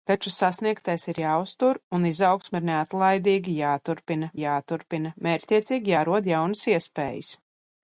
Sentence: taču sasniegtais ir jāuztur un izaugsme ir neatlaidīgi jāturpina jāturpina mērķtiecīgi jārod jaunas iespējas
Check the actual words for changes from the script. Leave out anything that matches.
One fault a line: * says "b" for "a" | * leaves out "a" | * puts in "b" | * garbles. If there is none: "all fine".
all fine